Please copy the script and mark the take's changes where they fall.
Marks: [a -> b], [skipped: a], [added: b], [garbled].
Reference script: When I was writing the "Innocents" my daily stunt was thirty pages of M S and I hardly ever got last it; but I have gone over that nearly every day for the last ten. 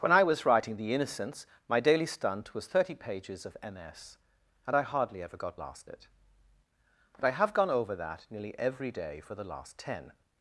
When I was writing the "Innocents" my daily stunt was thirty pages of M S and I hardly ever got last it; but I have gone over that nearly every day for the last ten.